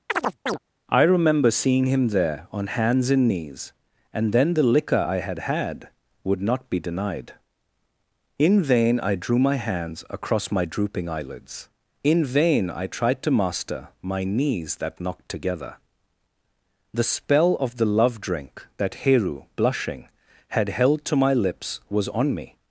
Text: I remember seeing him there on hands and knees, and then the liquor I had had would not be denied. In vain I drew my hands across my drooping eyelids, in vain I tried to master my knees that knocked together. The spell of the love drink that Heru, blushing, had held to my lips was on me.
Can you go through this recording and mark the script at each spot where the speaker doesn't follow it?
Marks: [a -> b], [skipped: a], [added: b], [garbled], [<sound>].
[chirp] I remember seeing him there on hands and knees, and then the liquor I had had would not be denied. In vain I drew my hands across my drooping eyelids, in vain I tried to master my knees that knocked together. The spell of the love drink that Heru, blushing, had held to my lips was on me.